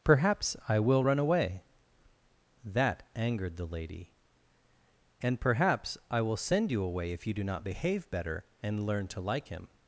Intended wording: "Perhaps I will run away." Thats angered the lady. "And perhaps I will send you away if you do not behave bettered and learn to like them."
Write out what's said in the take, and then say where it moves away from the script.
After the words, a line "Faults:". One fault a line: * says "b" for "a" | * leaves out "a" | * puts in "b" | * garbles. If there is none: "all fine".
"Perhaps I will run away." That angered the lady. "And perhaps I will send you away if you do not behave better and learn to like him."
Faults:
* says "That" for "Thats"
* says "better" for "bettered"
* says "him" for "them"